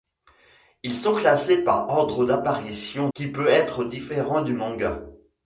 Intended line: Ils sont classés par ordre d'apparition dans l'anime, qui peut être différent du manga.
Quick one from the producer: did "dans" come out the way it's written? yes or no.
no